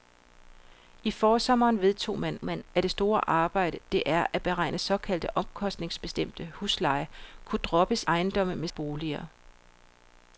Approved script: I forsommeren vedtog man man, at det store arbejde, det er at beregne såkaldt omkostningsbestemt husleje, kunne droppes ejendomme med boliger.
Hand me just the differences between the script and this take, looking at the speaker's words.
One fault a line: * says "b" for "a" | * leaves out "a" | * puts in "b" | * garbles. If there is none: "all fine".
all fine